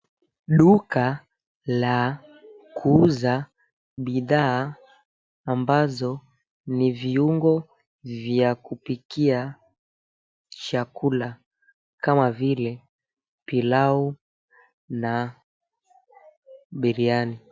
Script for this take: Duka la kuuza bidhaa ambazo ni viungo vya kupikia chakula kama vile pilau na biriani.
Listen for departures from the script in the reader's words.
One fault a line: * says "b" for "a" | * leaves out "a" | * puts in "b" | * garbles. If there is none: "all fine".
all fine